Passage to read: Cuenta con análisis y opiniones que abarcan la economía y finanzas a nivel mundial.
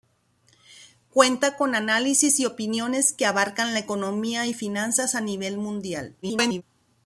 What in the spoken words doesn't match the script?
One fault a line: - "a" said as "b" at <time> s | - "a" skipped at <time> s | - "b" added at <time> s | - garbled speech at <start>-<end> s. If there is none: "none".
- garbled speech at 6.2-6.6 s